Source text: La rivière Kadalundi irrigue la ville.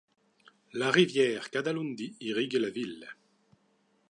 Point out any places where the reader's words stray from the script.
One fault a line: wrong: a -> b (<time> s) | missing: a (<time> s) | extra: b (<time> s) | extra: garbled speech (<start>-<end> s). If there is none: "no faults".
no faults